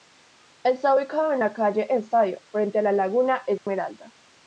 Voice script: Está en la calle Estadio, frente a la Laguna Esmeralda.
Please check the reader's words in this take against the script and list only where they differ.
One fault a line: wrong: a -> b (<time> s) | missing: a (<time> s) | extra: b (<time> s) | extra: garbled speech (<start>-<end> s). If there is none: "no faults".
extra: ubicado (0.9 s)